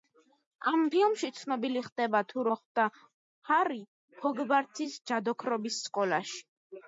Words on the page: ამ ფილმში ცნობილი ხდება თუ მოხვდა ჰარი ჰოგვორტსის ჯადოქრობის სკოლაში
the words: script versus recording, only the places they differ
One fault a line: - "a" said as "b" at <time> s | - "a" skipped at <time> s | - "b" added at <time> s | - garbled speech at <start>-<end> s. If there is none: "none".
none